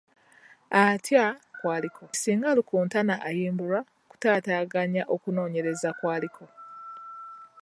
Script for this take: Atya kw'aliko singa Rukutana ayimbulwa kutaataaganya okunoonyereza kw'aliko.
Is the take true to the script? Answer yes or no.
yes